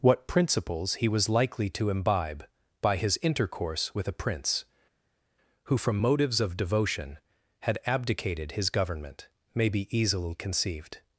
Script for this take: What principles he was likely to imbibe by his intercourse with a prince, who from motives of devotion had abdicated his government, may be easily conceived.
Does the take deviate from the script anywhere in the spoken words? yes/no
no